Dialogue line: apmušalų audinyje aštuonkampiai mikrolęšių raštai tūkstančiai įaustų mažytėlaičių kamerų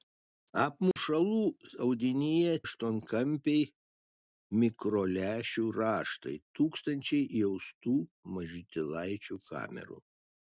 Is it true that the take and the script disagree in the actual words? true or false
false